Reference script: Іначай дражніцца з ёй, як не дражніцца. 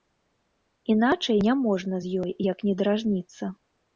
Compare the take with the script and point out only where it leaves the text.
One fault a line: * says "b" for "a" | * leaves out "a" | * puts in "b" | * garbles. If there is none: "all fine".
* says "няможна" for "дражніцца"